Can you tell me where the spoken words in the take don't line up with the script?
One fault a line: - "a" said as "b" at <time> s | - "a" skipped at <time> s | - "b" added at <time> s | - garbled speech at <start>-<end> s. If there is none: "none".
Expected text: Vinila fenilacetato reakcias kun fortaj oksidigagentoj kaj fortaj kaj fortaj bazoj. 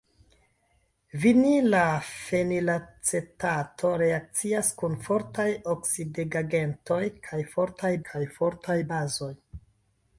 none